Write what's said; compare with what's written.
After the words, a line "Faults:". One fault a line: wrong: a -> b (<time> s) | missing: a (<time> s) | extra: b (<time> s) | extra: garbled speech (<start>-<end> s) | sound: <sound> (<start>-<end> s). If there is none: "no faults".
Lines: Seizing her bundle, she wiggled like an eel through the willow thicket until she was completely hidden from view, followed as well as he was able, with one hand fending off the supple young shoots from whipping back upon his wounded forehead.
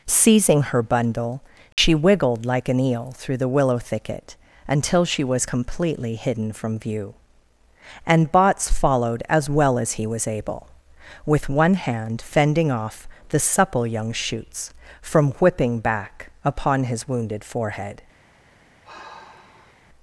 Seizing her bundle, she wiggled like an eel through the willow thicket until she was completely hidden from view, and Botts followed as well as he was able, with one hand fending off the supple young shoots from whipping back upon his wounded forehead.
Faults:
sound: dropout (1.7-1.8 s)
extra: and Botts (8.1 s)
sound: sigh (18.8-19.9 s)